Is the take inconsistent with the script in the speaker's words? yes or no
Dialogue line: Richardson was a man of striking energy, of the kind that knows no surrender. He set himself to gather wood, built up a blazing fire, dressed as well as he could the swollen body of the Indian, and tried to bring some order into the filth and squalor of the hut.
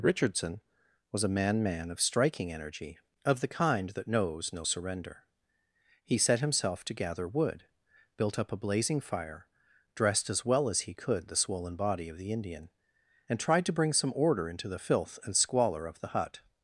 yes